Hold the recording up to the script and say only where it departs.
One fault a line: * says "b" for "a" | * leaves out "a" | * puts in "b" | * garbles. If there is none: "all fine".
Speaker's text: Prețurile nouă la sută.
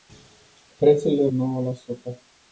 all fine